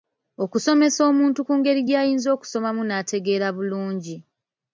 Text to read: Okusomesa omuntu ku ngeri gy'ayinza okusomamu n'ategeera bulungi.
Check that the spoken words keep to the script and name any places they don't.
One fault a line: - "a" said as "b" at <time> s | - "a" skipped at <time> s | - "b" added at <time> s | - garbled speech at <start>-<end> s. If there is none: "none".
none